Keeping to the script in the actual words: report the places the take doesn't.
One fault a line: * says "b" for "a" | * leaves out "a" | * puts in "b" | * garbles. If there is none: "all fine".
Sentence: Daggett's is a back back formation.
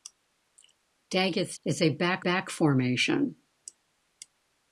all fine